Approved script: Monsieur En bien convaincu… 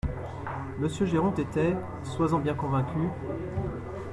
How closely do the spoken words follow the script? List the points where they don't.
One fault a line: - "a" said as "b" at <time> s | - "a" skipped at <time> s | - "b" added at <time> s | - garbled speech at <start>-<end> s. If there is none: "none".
- "Géronte était sois" added at 1.1 s